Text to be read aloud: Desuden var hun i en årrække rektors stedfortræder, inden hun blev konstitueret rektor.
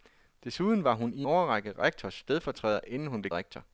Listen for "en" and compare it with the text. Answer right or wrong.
wrong